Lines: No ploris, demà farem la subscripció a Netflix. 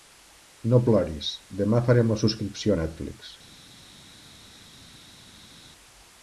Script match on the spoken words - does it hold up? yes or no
yes